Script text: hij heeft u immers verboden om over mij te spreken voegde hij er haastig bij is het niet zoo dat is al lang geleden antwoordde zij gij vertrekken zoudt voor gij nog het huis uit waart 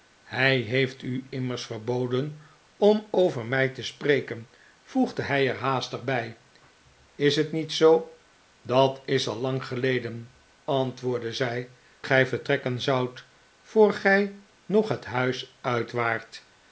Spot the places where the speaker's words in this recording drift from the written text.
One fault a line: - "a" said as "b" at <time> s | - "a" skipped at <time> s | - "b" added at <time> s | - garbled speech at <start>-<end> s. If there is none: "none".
none